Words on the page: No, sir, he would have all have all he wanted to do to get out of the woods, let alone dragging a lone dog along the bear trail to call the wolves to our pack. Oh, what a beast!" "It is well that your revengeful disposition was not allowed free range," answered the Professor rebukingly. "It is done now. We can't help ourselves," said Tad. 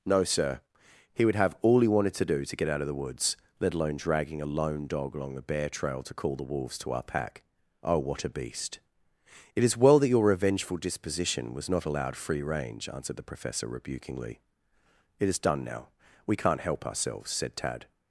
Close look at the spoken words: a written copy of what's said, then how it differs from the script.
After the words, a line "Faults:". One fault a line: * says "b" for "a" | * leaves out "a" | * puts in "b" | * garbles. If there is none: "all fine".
No, sir, he would have all he wanted to do to get out of the woods, let alone dragging a lone dog along the bear trail to call the wolves to our pack. Oh, what a beast!" "It is well that your revengeful disposition was not allowed free range," answered the Professor rebukingly. "It is done now. We can't help ourselves," said Tad.
Faults:
* leaves out "have all"